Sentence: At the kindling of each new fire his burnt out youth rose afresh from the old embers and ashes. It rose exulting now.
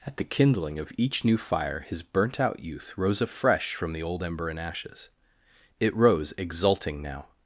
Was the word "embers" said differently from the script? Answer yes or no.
yes